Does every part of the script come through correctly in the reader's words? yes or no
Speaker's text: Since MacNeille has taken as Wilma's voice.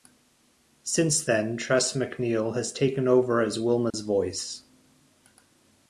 no